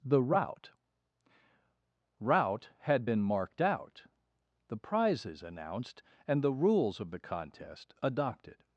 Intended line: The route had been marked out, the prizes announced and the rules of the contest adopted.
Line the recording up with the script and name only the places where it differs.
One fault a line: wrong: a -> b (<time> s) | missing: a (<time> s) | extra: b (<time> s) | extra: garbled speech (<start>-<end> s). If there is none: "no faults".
extra: route (2.2 s)